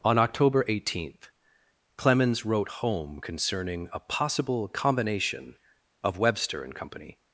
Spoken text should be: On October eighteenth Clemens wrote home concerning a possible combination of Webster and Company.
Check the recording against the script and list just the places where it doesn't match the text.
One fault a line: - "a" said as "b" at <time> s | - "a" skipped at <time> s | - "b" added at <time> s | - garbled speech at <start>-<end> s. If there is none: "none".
none